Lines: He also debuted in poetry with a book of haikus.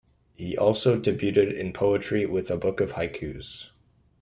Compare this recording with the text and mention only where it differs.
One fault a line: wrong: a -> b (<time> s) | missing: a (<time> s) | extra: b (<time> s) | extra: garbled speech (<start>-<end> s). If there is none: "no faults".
no faults